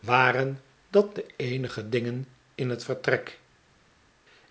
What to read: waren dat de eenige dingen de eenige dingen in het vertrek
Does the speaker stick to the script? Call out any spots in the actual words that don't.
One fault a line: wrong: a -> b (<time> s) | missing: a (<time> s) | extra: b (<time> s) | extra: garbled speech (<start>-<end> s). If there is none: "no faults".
missing: de eenige dingen (2.3 s)